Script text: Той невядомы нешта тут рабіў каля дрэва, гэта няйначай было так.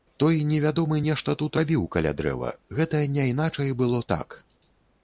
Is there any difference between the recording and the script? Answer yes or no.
no